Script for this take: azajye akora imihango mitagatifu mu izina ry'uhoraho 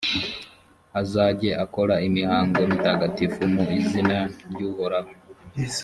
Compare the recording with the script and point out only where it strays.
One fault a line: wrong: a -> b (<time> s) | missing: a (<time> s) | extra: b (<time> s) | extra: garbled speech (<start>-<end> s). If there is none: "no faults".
no faults